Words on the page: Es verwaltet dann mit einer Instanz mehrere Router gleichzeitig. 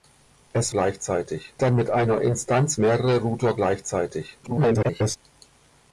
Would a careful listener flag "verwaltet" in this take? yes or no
yes